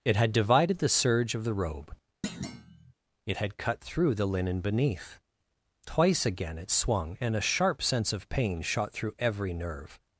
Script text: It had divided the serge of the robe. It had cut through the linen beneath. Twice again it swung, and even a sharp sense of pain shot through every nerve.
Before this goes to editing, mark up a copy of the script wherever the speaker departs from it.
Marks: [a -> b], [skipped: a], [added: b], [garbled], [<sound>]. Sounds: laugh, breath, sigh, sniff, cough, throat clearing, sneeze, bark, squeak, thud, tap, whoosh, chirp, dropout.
It had divided the serge of the robe. [thud] It had cut through the linen beneath. Twice again it swung, and [skipped: even] a sharp sense of pain shot through every nerve.